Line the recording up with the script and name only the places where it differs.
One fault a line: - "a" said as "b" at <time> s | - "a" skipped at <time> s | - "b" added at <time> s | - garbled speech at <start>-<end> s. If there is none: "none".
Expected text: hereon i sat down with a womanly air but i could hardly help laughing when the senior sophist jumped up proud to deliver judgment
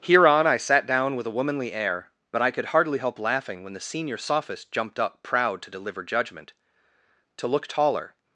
- "to look taller" added at 7.4 s